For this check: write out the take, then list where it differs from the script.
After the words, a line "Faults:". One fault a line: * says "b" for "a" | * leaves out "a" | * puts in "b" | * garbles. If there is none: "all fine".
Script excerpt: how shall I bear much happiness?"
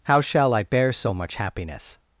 how shall I bear so much happiness?"
Faults:
* puts in "so"